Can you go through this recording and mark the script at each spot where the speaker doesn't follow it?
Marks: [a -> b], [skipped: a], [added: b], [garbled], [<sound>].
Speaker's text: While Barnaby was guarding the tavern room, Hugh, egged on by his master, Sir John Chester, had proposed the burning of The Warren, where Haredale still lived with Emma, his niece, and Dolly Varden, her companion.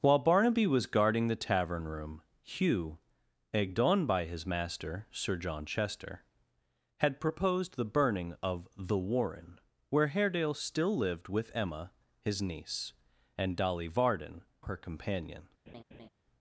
While Barnaby was guarding the tavern room, Hugh, egged on by his master, Sir John Chester, had proposed the burning of The Warren, where Haredale still lived with Emma, his niece, and Dolly Varden, her companion. [laugh]